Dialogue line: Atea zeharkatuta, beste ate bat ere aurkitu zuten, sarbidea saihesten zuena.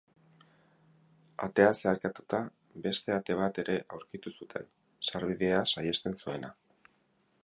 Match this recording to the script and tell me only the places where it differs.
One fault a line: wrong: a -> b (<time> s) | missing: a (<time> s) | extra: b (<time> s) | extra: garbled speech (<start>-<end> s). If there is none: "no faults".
no faults